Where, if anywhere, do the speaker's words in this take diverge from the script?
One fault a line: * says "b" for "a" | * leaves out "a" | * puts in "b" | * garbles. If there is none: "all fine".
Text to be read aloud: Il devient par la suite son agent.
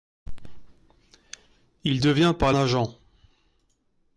* leaves out "la suite son"